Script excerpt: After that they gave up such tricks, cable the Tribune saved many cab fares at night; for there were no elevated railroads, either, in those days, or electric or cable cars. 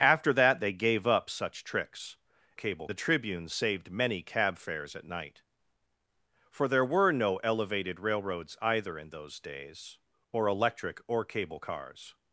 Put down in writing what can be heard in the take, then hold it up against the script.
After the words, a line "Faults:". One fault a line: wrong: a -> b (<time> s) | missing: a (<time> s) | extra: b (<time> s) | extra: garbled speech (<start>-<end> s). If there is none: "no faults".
After that they gave up such tricks, cable the Tribune saved many cab fares at night; for there were no elevated railroads, either, in those days, or electric or cable cars.
Faults:
no faults